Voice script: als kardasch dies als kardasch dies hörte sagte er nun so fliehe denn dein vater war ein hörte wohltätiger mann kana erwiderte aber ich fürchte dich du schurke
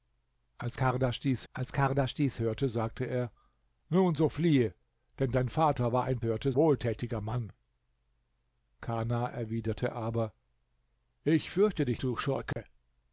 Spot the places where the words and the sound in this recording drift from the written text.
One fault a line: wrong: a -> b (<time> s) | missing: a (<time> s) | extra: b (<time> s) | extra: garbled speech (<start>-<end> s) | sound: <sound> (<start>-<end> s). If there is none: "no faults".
sound: dropout (12.5-12.6 s)